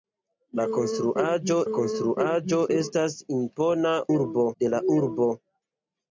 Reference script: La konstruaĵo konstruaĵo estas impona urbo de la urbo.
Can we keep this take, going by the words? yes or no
yes